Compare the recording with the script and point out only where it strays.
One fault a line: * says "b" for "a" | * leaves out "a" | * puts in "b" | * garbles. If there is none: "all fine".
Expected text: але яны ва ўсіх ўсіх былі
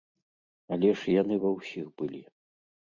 * puts in "ж"
* leaves out "ўсіх"